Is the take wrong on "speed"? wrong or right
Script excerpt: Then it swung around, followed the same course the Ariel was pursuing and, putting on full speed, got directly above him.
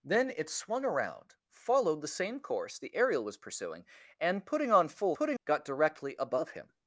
wrong